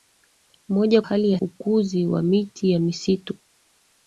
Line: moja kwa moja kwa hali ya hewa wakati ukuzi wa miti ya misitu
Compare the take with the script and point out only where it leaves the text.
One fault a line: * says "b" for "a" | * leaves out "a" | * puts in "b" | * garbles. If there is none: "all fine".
* leaves out "kwa moja kwa"
* leaves out "hewa wakati"